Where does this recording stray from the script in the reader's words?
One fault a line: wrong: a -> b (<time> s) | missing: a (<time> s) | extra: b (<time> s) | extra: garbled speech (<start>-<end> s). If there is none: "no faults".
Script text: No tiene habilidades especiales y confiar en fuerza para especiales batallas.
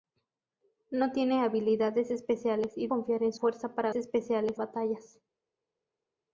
no faults